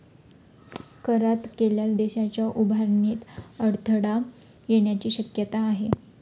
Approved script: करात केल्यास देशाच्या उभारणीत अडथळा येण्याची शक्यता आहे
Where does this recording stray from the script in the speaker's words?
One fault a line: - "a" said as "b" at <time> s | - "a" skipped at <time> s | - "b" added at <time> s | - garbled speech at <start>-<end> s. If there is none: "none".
none